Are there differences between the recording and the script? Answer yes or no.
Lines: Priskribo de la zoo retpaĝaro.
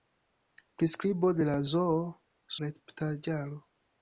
no